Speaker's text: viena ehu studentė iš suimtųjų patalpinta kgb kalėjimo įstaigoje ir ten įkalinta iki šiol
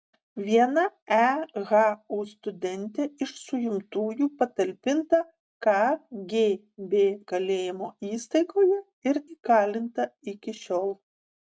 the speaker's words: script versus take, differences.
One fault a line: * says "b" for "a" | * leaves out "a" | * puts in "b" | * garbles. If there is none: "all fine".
* leaves out "ten"